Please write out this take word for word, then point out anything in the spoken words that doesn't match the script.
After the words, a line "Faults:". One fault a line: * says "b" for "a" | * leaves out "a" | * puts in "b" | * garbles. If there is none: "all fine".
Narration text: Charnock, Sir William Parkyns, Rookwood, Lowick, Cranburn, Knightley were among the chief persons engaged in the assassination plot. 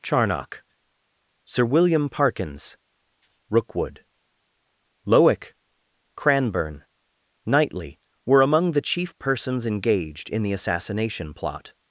Charnock, Sir William Parkyns, Rookwood, Lowick, Cranburn, Knightley were among the chief persons engaged in the assassination plot.
Faults:
all fine